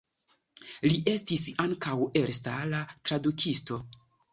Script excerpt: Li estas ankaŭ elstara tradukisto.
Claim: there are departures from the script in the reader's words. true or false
true